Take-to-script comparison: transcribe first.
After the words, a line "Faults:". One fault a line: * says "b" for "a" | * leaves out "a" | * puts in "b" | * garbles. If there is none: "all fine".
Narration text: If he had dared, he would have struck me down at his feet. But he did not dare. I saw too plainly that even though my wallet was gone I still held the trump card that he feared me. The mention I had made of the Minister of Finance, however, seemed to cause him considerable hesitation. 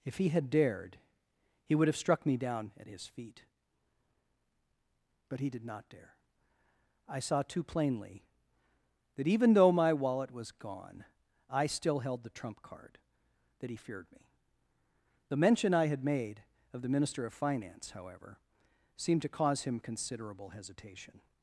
If he had dared, he would have struck me down at his feet. But he did not dare. I saw too plainly that even though my wallet was gone I still held the trump card that he feared me. The mention I had made of the Minister of Finance, however, seemed to cause him considerable hesitation.
Faults:
all fine